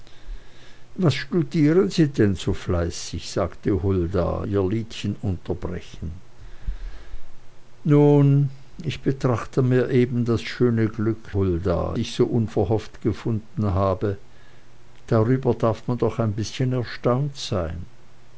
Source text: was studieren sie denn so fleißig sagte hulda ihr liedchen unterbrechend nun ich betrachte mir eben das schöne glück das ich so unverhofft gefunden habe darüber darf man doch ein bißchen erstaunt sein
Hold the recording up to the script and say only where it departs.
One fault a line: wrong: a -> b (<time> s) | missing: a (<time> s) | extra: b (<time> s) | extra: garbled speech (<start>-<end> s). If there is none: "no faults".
wrong: das -> hulda (11.3 s)